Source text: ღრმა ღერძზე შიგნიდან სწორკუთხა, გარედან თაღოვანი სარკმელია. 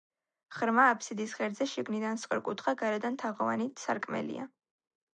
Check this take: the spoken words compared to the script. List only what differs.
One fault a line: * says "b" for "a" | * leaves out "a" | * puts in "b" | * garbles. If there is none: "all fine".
* puts in "აფსიდის"